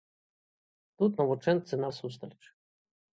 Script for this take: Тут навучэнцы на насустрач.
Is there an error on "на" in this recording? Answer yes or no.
no